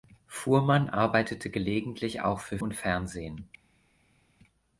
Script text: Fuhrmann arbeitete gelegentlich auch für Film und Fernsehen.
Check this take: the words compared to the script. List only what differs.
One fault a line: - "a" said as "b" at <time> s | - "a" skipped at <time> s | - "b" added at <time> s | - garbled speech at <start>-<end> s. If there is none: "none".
- "Film" skipped at 2.6 s